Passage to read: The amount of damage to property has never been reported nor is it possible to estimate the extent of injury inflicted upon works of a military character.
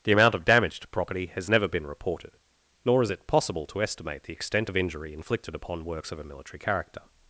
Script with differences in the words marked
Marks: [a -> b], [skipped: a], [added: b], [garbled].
The amount of damage to property has never been reported nor is it possible to estimate the extent of injury inflicted upon works of a military character.